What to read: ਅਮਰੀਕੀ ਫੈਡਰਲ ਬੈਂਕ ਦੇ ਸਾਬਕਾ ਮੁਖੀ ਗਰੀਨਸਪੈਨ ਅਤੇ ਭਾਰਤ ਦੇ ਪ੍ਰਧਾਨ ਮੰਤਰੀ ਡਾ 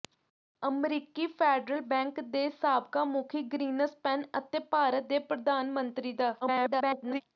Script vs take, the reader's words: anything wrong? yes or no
yes